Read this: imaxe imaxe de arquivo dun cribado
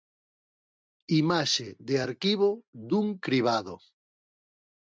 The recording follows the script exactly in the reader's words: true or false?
false